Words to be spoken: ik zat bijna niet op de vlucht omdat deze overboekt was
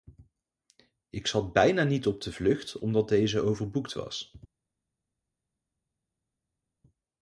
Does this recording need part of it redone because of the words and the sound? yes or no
no